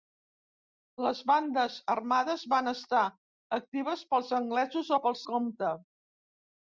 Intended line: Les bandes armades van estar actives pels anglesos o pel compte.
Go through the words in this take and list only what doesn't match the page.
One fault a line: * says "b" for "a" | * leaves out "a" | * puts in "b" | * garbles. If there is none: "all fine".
all fine